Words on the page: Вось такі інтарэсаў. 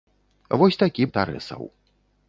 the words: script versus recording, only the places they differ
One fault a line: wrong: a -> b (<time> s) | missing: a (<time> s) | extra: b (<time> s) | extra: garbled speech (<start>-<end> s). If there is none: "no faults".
no faults